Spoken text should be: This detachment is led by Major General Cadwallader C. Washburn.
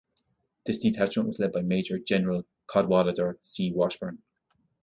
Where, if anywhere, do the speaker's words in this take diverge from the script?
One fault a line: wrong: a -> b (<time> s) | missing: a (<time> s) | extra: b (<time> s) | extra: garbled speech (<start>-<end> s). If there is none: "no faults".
wrong: is -> was (1.3 s)